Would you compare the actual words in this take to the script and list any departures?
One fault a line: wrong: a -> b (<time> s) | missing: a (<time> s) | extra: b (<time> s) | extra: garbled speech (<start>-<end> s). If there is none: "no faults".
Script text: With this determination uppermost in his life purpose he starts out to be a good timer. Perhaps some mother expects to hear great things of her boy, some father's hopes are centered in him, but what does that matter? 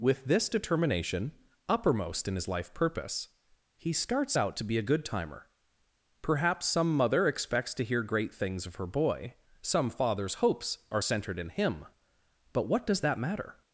no faults